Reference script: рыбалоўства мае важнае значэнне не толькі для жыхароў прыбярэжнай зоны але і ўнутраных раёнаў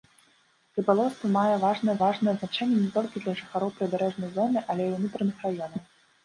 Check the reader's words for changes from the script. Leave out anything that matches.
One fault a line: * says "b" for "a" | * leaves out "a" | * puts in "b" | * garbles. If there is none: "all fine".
* puts in "важнае"